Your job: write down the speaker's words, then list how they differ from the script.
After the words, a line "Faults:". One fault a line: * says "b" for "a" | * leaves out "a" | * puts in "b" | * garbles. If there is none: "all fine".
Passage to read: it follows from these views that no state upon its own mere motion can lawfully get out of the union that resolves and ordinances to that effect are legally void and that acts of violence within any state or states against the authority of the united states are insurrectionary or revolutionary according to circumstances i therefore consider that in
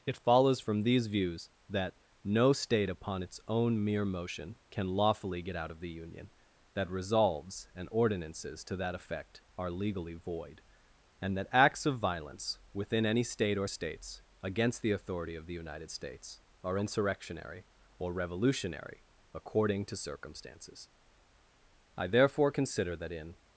it follows from these views that no state upon its own mere motion can lawfully get out of the union that resolves and ordinances to that effect are legally void and that acts of violence within any state or states against the authority of the united states are insurrectionary or revolutionary according to circumstances i therefore consider that in
Faults:
all fine